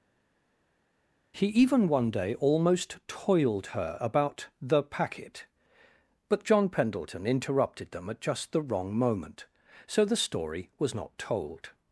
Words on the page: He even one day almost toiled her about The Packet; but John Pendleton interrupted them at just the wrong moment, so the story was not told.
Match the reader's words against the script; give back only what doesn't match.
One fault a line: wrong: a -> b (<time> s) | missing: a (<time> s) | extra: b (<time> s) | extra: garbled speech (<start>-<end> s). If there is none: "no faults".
no faults